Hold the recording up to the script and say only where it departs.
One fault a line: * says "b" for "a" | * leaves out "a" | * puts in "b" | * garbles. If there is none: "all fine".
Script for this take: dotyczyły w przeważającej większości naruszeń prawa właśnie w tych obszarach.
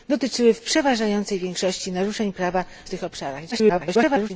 * leaves out "właśnie"
* garbles